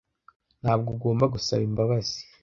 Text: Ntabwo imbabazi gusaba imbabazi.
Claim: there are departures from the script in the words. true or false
true